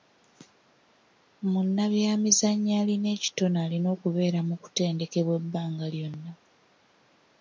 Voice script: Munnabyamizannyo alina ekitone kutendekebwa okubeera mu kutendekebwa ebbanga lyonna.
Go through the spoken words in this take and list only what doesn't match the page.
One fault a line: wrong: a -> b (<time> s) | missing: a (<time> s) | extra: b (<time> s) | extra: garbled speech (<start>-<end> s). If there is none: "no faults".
wrong: kutendekebwa -> alina (3.6 s)